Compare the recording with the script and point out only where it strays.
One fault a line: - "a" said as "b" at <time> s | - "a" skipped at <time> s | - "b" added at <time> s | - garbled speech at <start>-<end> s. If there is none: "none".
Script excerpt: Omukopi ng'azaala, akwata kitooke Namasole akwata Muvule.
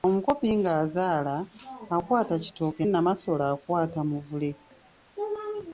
none